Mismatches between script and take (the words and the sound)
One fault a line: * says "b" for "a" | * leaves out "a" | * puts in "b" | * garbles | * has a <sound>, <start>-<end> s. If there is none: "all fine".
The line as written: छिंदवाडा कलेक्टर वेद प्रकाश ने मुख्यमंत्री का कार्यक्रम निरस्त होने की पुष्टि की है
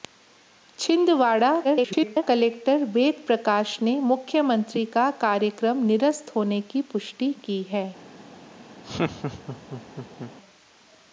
* garbles
* has a laugh, 8.8-10.3 s